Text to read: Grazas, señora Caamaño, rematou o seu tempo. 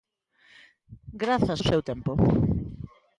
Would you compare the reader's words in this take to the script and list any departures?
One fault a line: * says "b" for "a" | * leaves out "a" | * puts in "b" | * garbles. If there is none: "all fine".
* leaves out "señora Caamaño rematou"